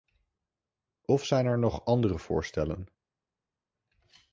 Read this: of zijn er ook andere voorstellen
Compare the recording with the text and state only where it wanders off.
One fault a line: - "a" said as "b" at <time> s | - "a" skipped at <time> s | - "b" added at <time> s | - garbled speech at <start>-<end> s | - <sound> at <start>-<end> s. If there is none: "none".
- "ook" said as "nog" at 1.6 s